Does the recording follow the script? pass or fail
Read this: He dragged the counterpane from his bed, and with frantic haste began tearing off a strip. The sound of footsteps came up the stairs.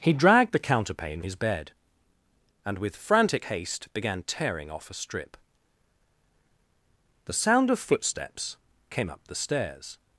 fail